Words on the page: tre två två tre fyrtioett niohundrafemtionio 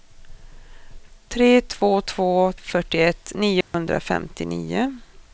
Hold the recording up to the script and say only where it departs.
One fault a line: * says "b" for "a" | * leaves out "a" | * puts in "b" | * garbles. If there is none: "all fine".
* leaves out "tre"